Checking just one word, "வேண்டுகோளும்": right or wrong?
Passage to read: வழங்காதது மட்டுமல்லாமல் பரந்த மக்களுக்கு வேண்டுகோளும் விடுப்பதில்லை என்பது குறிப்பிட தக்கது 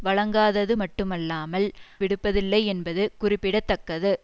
wrong